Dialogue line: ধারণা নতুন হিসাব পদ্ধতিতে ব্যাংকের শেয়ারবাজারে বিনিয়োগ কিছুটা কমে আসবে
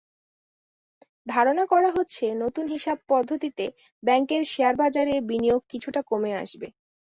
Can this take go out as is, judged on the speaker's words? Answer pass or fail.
fail